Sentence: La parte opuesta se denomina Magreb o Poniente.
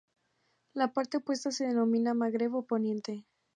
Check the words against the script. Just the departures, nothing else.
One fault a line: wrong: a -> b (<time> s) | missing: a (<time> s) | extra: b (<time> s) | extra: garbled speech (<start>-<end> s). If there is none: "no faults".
no faults